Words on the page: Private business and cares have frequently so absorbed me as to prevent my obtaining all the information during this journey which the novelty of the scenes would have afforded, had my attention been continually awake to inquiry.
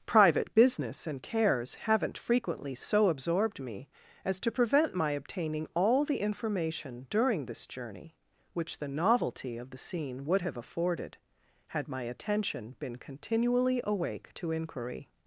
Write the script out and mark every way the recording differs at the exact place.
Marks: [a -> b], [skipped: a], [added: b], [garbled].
Private business and cares [have -> haven't] frequently so absorbed me as to prevent my obtaining all the information during this journey which the novelty of the [scenes -> scene] would have afforded, had my attention been continually awake to inquiry.